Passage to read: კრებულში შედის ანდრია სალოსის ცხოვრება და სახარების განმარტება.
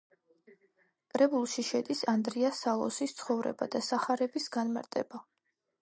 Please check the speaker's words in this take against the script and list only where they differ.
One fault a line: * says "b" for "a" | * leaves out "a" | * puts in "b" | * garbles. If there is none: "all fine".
all fine